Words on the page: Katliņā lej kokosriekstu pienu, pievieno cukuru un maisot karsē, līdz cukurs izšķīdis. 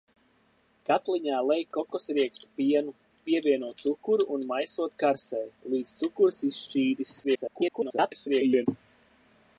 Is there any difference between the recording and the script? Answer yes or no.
yes